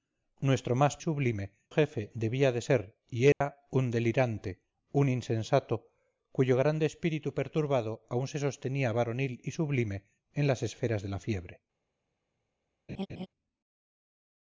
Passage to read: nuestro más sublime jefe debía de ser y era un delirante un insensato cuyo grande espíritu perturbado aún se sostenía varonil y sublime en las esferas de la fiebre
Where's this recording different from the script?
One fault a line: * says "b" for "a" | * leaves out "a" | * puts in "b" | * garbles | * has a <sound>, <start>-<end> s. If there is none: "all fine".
* has a dropout, 3.3-3.4 s
* has a laugh, 12.9-13.3 s